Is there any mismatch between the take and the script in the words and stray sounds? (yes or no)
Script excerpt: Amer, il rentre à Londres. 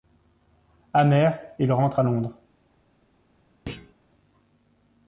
yes